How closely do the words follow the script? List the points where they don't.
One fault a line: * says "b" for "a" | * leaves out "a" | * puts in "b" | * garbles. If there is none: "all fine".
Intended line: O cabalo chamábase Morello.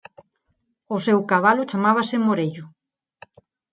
* puts in "seu"